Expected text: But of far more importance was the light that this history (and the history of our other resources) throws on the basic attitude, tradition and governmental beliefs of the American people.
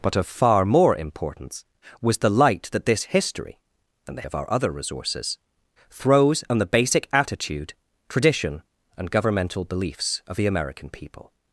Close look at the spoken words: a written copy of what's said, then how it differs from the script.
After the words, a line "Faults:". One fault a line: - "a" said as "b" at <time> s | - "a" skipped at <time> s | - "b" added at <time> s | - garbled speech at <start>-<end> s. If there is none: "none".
But of far more importance was the light that this history (and the of our other resources) throws on the basic attitude, tradition and governmental beliefs of the American people.
Faults:
- "history" skipped at 4.3 s